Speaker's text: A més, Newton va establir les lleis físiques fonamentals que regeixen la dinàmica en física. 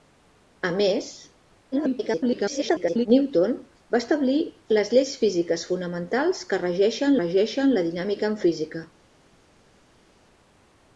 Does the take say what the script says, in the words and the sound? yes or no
no